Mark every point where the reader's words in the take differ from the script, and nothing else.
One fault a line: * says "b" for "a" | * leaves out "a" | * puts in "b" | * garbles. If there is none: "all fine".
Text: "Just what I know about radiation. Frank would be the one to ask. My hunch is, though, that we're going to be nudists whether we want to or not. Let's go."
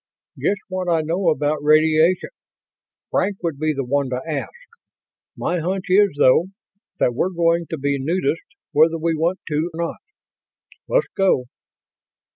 * leaves out "or"